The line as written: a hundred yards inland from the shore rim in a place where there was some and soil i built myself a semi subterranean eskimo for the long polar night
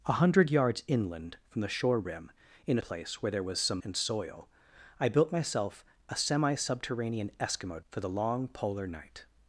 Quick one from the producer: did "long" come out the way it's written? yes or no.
yes